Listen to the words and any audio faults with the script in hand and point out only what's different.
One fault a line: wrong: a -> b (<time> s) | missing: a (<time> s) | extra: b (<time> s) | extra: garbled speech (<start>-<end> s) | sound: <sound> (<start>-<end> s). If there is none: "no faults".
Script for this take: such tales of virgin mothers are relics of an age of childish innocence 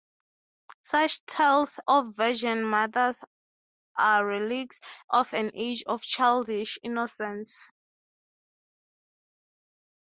no faults